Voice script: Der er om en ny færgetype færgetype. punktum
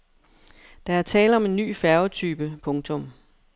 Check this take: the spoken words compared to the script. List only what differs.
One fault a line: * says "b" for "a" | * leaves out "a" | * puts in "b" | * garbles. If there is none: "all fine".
* puts in "tale"
* leaves out "færgetype"